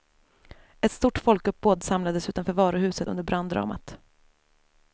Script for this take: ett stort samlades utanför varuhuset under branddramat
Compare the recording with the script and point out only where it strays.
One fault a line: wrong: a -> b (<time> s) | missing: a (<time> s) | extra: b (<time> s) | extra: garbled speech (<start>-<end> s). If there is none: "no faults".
extra: folkuppbåd (1.2 s)